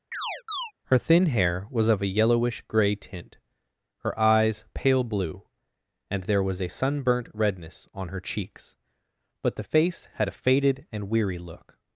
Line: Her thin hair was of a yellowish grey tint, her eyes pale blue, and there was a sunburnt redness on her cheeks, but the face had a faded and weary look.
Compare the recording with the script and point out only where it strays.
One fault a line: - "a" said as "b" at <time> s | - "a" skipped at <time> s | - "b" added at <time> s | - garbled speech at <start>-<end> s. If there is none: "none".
none